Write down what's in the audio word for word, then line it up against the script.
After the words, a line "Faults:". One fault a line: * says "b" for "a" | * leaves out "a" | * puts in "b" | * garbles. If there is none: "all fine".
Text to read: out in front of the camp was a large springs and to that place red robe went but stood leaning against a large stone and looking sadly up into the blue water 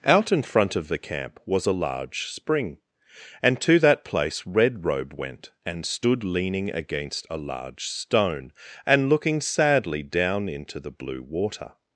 out in front of the camp was a large spring and to that place red robe went and stood leaning against a large stone and looking sadly down into the blue water
Faults:
* says "spring" for "springs"
* says "and" for "but"
* says "down" for "up"